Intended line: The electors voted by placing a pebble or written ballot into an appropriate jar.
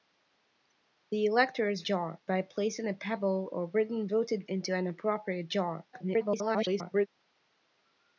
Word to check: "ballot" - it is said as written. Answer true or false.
false